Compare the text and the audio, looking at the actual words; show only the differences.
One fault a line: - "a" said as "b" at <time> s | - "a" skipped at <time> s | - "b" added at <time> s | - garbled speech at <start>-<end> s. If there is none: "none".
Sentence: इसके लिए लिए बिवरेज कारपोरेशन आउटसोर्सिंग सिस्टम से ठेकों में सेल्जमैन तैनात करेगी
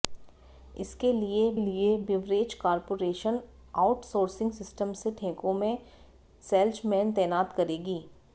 none